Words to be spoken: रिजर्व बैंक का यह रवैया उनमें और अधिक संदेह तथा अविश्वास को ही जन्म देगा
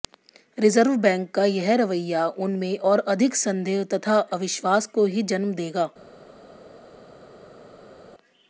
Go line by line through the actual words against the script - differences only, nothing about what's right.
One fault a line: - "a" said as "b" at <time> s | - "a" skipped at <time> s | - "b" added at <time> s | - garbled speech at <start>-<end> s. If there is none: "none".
none